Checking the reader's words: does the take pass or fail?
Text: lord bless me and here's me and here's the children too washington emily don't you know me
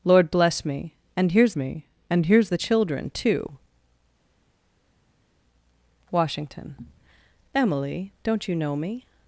pass